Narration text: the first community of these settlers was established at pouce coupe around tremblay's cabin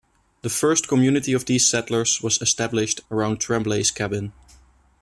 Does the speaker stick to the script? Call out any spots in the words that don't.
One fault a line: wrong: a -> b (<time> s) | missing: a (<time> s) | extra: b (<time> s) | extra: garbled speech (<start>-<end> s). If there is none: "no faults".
missing: at pouce coupe (3.0 s)